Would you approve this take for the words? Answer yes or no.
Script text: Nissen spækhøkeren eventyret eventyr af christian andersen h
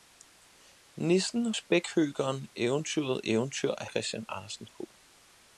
yes